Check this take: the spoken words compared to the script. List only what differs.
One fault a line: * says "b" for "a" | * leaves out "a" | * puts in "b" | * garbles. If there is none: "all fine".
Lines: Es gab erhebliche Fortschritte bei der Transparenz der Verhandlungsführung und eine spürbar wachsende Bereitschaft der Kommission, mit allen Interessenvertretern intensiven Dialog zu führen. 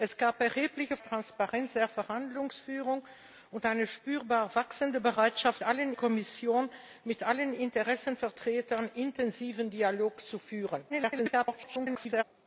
* leaves out "Fortschritte bei der"
* says "allen" for "der"
* garbles